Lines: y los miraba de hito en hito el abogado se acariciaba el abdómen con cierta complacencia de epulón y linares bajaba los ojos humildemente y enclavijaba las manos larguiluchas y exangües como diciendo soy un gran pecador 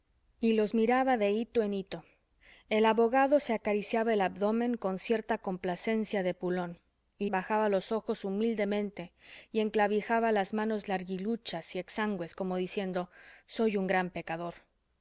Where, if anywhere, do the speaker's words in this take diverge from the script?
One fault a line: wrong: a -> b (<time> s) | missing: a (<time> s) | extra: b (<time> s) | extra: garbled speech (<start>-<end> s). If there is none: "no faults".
missing: linares (7.3 s)